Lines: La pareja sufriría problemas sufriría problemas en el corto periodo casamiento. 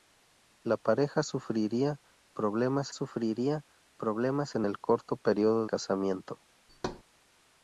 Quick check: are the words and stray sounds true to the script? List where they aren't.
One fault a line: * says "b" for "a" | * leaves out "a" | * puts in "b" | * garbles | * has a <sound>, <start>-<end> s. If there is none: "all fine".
* has a thud, 6.7-7.0 s